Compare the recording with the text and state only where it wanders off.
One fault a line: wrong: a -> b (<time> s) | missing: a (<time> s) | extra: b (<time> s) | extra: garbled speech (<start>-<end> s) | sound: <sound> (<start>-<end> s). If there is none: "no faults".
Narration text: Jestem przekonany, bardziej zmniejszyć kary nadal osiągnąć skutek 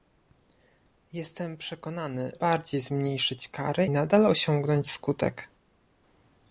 no faults